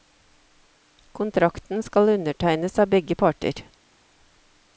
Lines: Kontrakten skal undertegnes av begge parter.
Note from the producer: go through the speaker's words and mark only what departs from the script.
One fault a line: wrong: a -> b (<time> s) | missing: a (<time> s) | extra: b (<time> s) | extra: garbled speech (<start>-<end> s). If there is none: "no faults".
no faults